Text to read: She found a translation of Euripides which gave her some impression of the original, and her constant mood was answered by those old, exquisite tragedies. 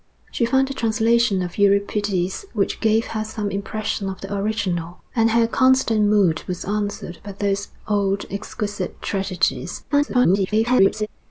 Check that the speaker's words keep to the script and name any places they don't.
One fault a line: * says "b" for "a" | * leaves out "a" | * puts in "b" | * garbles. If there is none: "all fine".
* garbles